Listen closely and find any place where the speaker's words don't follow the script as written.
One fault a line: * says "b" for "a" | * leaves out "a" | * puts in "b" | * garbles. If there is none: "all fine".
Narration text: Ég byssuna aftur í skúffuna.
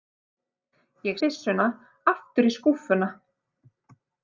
all fine